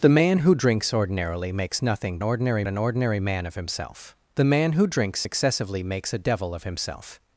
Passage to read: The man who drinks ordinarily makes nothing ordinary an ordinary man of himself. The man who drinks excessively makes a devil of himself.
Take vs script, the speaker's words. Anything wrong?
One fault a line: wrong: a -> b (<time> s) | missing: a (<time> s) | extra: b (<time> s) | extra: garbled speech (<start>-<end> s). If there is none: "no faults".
no faults